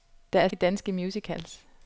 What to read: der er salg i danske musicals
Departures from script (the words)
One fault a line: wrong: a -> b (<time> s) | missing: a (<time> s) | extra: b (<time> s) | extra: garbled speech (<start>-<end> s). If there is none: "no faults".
missing: salg (0.5 s)